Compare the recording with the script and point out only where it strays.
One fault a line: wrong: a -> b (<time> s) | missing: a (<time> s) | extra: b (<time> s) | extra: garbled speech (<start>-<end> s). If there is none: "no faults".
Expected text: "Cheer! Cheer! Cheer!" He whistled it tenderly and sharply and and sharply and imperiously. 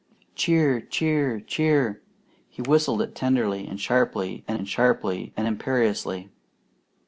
no faults